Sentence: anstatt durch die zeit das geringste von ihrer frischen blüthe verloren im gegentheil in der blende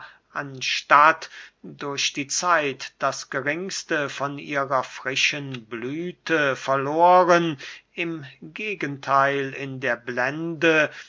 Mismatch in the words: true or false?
false